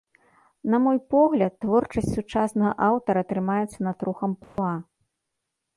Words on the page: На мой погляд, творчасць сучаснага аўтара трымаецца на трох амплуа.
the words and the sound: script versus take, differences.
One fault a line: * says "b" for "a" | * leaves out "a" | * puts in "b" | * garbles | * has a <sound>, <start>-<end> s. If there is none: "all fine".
* has a dropout, 4.4-4.6 s